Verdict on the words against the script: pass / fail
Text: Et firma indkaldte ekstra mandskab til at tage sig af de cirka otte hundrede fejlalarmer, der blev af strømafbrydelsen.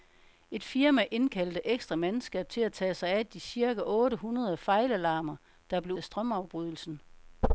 pass